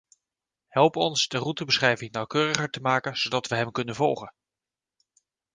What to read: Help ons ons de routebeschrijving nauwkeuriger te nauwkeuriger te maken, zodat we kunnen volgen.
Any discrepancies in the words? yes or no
yes